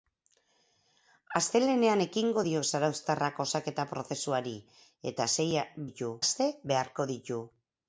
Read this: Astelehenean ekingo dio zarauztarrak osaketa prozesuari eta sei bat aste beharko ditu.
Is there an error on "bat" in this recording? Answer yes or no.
yes